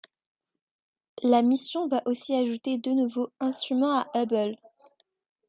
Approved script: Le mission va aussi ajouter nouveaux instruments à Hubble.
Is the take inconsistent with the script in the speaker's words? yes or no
yes